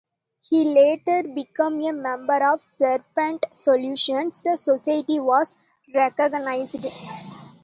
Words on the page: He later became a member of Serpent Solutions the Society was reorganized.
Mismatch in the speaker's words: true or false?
false